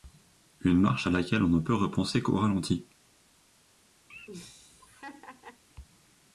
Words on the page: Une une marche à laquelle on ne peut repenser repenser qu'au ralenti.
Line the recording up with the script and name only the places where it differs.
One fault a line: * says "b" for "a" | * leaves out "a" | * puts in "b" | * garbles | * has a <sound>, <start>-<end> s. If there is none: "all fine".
* leaves out "une"
* leaves out "repenser"
* has a laugh, 4.1-5.6 s